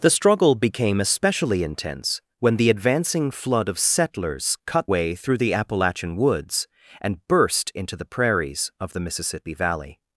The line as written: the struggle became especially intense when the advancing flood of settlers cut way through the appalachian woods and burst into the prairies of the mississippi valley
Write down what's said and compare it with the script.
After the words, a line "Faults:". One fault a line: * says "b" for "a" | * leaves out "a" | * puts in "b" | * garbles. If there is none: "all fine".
the struggle became especially intense when the advancing flood of settlers cut way through the appalachian woods and burst into the prairies of the mississippi valley
Faults:
all fine